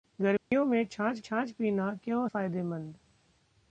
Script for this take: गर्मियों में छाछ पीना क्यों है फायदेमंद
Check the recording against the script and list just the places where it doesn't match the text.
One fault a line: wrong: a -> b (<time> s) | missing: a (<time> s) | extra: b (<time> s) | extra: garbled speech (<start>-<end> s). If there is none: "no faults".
extra: छाछ (1.2 s)
missing: है (2.3 s)